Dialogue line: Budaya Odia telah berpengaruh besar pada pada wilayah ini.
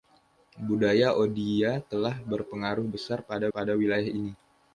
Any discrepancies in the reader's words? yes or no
no